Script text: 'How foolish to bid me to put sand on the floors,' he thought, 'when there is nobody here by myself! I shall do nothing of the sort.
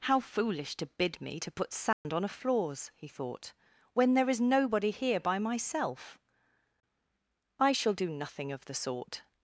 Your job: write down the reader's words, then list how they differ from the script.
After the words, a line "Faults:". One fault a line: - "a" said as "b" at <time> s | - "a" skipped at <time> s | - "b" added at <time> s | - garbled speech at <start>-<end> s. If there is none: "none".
'How foolish to bid me to put sand on a floors,' he thought, 'when there is nobody here by myself! I shall do nothing of the sort.
Faults:
- "the" said as "a" at 2.2 s